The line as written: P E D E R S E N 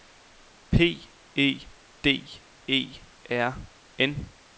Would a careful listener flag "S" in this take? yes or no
yes